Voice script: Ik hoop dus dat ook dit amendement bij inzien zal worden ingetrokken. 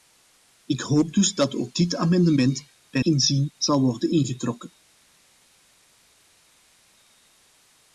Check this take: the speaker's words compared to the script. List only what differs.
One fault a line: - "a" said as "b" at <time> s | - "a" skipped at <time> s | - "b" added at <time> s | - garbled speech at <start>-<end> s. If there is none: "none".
none